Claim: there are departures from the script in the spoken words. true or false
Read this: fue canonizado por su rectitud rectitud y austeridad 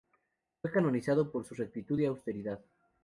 true